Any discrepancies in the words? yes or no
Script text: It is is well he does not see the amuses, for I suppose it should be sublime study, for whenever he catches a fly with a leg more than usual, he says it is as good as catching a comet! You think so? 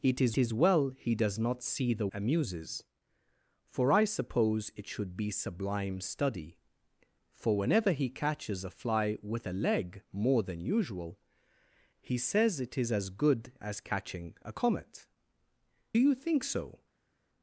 no